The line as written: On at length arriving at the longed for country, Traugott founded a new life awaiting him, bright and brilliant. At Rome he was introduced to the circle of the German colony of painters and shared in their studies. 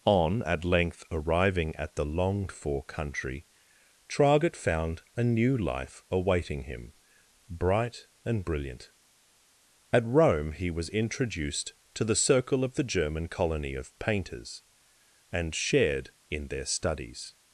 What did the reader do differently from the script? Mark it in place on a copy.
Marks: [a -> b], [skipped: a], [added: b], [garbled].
On at length arriving at the longed for country, Traugott [founded -> found] a new life awaiting him, bright and brilliant. At Rome he was introduced to the circle of the German colony of painters and shared in their studies.